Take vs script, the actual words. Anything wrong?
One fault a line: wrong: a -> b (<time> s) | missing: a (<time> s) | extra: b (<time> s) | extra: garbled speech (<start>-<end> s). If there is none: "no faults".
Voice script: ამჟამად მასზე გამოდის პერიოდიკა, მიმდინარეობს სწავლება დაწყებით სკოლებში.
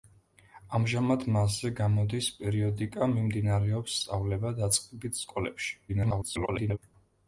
extra: garbled speech (5.9-6.8 s)